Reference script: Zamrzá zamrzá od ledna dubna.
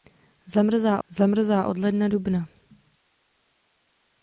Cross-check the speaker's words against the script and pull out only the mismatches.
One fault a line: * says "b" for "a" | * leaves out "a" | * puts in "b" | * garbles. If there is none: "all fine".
all fine